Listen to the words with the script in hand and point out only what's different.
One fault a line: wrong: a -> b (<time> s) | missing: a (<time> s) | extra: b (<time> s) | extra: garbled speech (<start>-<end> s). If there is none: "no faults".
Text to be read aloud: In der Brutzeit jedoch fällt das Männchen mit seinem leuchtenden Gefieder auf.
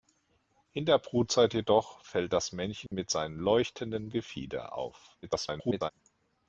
extra: garbled speech (5.2-5.9 s)